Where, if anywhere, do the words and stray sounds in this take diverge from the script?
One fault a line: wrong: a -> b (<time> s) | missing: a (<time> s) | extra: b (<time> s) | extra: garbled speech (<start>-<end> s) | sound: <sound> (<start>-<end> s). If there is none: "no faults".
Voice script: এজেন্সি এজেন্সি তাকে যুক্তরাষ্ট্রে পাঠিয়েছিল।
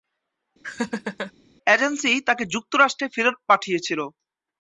sound: laugh (0.6-1.3 s)
missing: এজেন্সি (2.1 s)
extra: ফেরত (3.1 s)